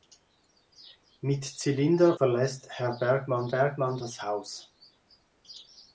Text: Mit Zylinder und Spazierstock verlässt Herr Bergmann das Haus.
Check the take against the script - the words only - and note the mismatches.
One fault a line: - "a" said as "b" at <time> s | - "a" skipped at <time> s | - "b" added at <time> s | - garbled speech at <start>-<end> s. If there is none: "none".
- "und Spazierstock" skipped at 2.2 s
- "Bergmann" added at 3.5 s